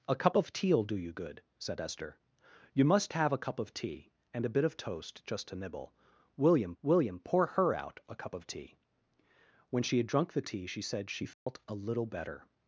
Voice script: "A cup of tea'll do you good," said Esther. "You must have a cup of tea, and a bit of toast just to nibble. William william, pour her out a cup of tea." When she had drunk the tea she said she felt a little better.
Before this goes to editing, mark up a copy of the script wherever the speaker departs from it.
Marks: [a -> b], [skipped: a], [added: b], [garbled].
"A cup of tea'll do you good," said Esther. "You must have a cup of tea, and a bit of toast just to nibble. William william, pour her out a cup of tea." When she had drunk the tea she said she felt a little better.